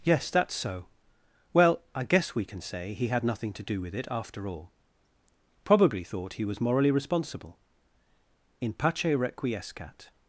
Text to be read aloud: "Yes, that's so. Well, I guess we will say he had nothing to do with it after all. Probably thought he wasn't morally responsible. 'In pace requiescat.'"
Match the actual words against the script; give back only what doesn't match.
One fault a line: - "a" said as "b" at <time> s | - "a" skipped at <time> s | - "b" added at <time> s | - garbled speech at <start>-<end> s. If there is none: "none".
- "will" said as "can" at 2.5 s
- "wasn't" said as "was" at 6.5 s